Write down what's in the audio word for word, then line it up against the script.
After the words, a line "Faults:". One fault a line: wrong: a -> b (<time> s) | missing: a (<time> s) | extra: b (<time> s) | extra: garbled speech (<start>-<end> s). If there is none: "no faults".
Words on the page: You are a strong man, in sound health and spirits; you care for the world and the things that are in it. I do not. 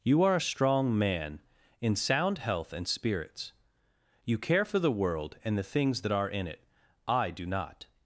You are a strong man, in sound health and spirits; you care for the world and the things that are in it. I do not.
Faults:
no faults